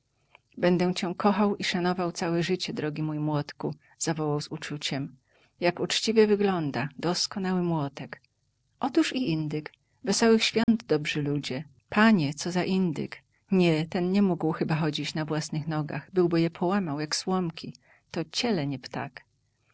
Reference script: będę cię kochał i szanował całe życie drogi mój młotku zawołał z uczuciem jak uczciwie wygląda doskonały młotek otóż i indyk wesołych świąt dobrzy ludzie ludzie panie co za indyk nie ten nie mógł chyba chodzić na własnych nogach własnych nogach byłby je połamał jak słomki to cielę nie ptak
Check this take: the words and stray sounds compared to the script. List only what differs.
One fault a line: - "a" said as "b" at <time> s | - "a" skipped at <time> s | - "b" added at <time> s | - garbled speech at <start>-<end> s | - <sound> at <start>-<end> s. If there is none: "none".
- dropout at 10.6-10.7 s
- "ludzie" skipped at 11.6 s
- "własnych nogach" skipped at 16.1 s